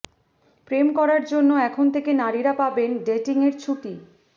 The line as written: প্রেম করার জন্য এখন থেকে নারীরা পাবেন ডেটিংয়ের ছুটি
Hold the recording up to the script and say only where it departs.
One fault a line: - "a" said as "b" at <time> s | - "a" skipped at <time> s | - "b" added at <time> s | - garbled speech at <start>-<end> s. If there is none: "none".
none